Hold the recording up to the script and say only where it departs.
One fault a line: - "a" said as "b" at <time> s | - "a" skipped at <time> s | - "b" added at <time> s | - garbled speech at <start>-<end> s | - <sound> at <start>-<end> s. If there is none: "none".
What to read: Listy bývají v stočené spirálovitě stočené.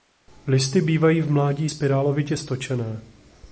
- "stočené" said as "mládí" at 1.3 s